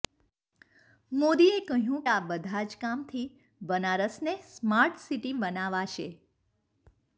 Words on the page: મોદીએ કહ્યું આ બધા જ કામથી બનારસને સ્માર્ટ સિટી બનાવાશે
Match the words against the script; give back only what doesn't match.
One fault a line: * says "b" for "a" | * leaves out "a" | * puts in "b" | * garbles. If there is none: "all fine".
all fine